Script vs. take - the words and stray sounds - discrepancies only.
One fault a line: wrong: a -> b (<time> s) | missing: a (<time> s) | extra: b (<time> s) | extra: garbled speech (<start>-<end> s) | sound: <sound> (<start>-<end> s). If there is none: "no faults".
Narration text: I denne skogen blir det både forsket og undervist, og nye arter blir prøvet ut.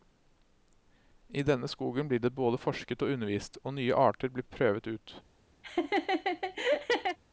sound: laugh (5.6-7.2 s)